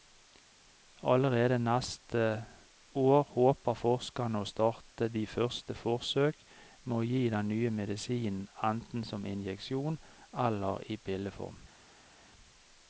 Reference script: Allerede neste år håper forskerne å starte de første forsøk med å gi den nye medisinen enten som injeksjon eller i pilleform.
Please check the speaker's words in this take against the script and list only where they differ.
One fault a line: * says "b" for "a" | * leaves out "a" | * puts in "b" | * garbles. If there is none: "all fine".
all fine